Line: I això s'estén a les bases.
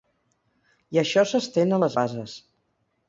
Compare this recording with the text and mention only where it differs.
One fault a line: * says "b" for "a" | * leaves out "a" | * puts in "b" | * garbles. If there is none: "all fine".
all fine